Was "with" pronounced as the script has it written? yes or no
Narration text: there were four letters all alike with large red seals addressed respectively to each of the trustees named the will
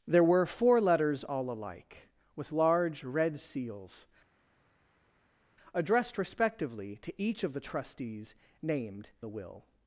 yes